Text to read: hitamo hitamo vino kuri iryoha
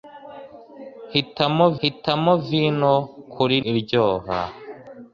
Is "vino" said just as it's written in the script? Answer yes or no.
yes